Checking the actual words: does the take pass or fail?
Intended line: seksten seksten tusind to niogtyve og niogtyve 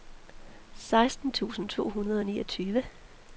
fail